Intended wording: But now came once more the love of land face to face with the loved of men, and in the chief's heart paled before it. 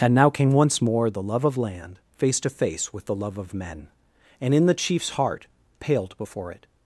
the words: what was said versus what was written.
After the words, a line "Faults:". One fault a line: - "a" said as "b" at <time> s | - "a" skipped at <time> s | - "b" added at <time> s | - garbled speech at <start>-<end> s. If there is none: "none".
And now came once more the love of land face to face with the love of men, and in the chief's heart paled before it.
Faults:
- "But" said as "And" at 0.0 s
- "loved" said as "love" at 3.1 s